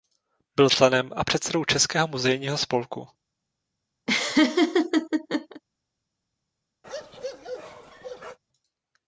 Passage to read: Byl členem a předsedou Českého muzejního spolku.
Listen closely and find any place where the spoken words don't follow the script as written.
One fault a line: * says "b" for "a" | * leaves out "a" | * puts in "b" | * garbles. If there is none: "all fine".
all fine